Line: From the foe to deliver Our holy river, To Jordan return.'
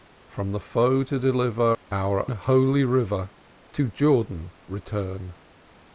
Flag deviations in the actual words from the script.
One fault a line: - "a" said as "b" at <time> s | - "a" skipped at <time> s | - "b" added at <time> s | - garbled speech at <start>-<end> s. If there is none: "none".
none